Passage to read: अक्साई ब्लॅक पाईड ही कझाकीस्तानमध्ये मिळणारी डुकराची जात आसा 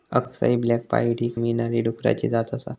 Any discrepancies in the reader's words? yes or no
yes